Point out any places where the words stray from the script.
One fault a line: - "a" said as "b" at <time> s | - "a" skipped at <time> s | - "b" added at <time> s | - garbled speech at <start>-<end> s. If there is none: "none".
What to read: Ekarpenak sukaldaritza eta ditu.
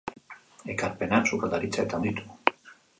none